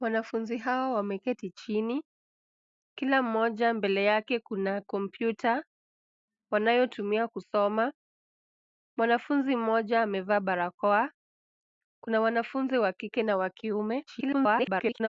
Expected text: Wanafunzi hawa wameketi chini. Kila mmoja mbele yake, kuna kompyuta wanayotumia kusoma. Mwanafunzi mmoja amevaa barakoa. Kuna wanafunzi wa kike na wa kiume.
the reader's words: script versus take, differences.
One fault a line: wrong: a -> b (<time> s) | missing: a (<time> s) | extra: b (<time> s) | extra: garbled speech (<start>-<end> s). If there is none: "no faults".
extra: garbled speech (14.1-15.1 s)